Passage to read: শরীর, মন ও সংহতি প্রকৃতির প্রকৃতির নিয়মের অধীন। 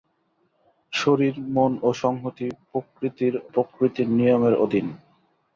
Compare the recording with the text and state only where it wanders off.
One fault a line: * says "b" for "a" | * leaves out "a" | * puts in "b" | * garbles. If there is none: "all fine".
all fine